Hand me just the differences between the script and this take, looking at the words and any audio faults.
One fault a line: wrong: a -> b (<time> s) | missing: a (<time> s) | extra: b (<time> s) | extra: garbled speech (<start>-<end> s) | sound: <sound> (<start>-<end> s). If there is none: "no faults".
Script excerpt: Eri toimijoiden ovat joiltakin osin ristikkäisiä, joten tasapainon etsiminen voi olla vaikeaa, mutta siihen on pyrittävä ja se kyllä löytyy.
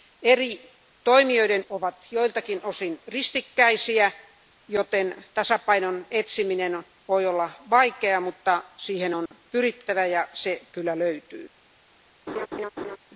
sound: dropout (9.3-9.3 s)
sound: laugh (12.3-13.0 s)